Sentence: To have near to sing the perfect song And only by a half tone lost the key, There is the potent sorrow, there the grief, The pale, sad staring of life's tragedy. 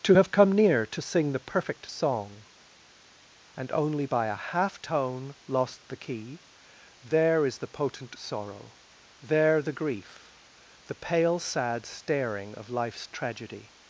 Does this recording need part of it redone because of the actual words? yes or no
yes